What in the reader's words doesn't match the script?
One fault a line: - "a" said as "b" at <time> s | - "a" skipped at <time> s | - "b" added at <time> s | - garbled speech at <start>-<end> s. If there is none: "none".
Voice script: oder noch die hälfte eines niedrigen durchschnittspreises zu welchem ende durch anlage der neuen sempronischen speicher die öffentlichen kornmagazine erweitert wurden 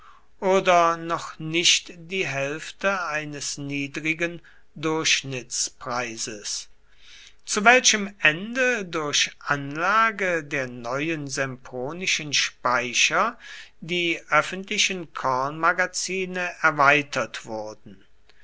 - "nicht" added at 1.4 s